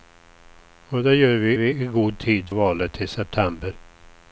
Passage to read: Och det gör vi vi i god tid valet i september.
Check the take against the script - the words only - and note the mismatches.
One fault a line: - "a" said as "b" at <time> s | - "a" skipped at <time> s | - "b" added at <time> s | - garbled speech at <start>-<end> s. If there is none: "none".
none